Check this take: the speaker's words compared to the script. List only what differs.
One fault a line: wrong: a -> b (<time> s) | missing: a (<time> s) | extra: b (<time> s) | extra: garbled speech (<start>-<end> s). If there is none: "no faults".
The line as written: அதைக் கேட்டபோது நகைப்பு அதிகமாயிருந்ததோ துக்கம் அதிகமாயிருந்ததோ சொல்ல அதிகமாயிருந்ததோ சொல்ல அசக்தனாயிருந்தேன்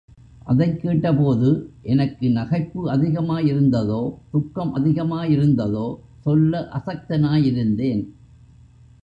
extra: எனக்கு (1.8 s)
missing: அதிகமாயிருந்ததோ சொல்ல (6.7 s)